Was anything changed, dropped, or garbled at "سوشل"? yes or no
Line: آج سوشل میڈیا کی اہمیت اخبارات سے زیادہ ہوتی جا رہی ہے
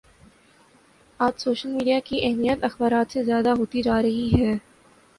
no